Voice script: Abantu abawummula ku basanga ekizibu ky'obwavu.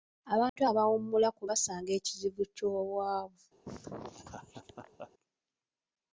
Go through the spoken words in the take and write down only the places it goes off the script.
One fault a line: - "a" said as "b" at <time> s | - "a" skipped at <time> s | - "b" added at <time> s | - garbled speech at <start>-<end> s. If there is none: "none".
none